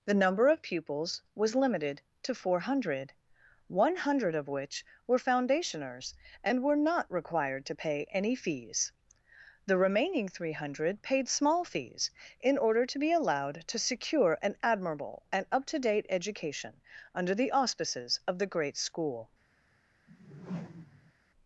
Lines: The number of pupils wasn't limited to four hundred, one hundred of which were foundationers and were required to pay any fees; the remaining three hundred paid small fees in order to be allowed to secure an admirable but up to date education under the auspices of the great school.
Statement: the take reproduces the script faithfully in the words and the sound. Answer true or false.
false